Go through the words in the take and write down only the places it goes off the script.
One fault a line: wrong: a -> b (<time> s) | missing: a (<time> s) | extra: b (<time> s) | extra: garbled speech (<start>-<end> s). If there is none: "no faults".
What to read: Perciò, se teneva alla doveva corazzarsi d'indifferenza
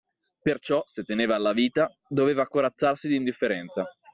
extra: vita (1.5 s)